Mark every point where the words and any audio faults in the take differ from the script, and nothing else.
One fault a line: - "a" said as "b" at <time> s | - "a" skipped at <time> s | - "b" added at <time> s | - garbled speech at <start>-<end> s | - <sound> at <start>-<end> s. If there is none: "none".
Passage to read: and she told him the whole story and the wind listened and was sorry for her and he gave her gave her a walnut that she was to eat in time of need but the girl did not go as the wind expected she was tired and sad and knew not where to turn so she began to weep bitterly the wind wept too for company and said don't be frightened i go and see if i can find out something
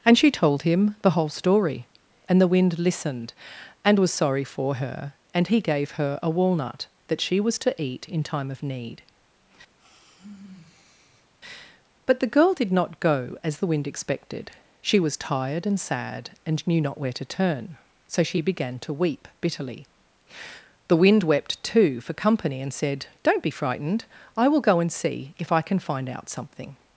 - "gave her" skipped at 6.2 s
- sigh at 9.8-11.3 s
- "will" added at 24.5 s